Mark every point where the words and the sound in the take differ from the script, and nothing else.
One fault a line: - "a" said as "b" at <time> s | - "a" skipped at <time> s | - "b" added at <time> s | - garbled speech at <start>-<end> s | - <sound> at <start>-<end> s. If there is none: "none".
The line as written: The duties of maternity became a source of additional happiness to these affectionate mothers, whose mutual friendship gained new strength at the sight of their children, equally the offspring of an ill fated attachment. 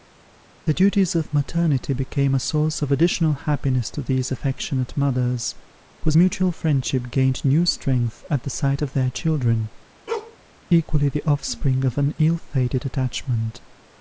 - bark at 10.1-10.4 s